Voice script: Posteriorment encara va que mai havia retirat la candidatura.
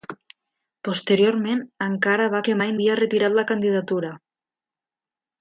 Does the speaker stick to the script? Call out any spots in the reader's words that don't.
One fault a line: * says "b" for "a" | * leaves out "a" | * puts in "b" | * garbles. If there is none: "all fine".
all fine